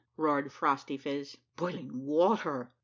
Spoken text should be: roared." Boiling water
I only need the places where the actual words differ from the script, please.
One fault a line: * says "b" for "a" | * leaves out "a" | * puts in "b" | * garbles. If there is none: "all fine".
* puts in "Phrostyphiz"